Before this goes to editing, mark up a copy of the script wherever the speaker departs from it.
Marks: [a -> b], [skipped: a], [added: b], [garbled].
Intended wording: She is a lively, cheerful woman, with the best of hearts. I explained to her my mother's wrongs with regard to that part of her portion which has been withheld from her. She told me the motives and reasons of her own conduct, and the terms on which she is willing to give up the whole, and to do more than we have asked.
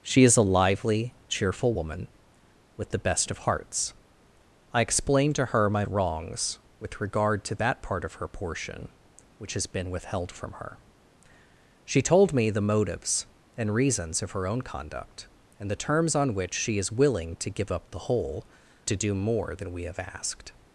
She is a lively, cheerful woman, with the best of hearts. I explained to her my [skipped: mother's] wrongs with regard to that part of her portion which has been withheld from her. She told me the motives and reasons of her own conduct, and the terms on which she is willing to give up the whole, [skipped: and] to do more than we have asked.